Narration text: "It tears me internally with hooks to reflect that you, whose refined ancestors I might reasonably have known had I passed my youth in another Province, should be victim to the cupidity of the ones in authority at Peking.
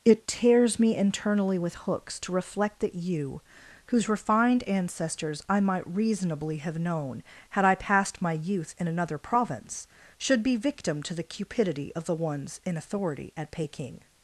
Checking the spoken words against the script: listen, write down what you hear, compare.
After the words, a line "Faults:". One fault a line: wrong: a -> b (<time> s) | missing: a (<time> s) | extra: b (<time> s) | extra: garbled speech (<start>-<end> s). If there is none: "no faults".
"It tears me internally with hooks to reflect that you, whose refined ancestors I might reasonably have known had I passed my youth in another Province, should be victim to the cupidity of the ones in authority at Peking.
Faults:
no faults